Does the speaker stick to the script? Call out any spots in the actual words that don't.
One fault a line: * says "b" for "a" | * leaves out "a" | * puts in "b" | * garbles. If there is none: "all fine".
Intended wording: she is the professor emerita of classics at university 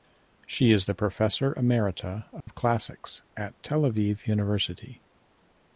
* puts in "tel aviv"